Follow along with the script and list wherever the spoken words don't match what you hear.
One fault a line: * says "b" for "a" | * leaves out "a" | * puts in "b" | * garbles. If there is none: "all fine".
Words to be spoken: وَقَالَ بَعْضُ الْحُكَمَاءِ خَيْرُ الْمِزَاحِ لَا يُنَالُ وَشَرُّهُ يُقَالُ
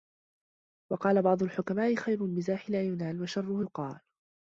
all fine